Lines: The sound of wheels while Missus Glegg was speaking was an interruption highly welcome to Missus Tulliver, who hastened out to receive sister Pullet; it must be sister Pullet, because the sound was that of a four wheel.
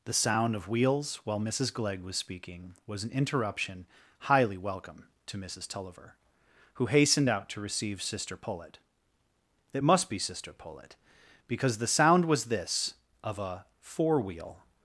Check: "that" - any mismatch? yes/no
yes